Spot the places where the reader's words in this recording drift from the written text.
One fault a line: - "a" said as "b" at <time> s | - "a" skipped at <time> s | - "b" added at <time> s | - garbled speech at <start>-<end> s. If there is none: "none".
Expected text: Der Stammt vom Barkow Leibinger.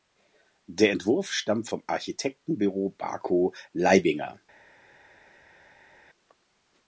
- "Entwurf" added at 0.9 s
- "Architektenbüro" added at 1.9 s